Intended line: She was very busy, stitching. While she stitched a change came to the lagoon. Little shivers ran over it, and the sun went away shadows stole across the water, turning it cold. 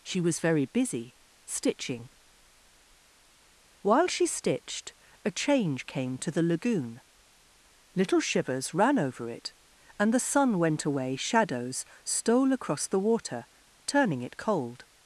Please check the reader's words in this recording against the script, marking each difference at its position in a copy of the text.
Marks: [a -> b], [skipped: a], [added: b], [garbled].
She was very busy, stitching. While she stitched a change came to the lagoon. Little shivers ran over it, and the sun went away shadows stole across the water, turning it cold.